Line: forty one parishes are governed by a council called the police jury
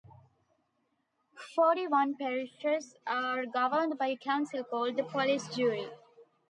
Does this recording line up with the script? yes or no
yes